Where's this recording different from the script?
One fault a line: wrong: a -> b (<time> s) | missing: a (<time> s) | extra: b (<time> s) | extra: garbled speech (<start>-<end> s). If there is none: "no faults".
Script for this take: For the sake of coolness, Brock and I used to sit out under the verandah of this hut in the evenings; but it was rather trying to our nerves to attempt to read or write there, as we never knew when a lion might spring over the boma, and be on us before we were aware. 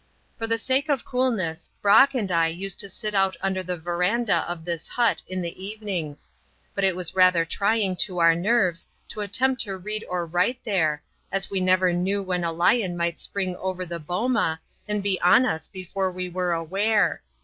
no faults